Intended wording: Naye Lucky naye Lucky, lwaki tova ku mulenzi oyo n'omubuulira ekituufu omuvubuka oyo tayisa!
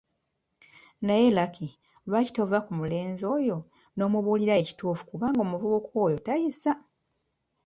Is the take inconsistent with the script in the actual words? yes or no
yes